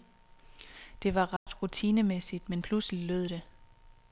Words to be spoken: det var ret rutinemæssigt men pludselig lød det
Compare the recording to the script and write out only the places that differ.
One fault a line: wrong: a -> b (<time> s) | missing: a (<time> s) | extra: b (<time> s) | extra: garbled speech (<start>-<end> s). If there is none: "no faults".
no faults